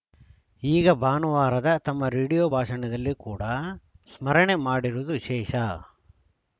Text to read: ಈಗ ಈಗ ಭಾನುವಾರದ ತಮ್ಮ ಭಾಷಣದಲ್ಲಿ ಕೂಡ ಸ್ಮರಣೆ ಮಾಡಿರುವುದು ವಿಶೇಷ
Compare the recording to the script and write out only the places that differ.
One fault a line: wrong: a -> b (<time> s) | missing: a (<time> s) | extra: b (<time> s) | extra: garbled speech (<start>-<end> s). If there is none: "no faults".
missing: ಈಗ (0.9 s)
extra: ರೇಡಿಯೋ (2.1 s)